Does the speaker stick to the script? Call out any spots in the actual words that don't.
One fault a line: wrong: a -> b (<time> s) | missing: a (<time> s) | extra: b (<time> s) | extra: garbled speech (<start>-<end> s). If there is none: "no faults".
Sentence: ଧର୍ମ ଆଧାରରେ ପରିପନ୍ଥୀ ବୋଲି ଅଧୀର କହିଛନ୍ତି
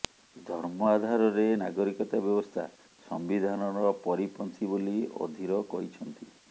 extra: ନାଗରିକତା ବ୍ୟବସ୍ଥା ସମ୍ବିଧାନର (1.6 s)